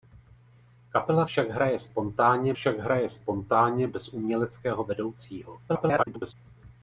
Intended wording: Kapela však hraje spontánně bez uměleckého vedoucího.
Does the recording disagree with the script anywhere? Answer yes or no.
yes